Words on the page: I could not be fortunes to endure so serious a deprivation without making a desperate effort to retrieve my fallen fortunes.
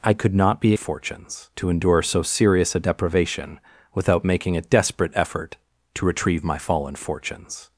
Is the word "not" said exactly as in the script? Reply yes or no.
yes